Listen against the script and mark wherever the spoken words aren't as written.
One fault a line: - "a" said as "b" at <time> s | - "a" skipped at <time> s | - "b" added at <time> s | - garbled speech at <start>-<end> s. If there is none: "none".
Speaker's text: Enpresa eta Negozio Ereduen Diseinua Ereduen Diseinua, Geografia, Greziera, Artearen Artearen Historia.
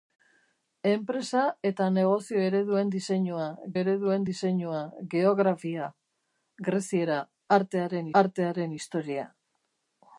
none